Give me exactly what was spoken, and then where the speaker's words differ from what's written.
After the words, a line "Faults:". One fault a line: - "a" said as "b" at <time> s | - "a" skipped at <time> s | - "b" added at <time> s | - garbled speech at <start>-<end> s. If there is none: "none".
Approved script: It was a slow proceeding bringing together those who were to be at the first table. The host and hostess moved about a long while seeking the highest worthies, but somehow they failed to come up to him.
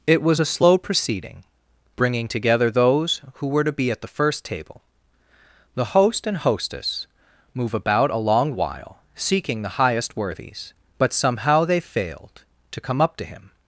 It was a slow proceeding bringing together those who were to be at the first table. The host and hostess move about a long while seeking the highest worthies, but somehow they failed to come up to him.
Faults:
- "moved" said as "move" at 7.5 s